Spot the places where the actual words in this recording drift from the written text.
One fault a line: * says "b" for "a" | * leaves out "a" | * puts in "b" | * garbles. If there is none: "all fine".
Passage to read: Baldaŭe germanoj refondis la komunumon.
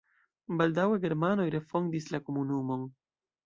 all fine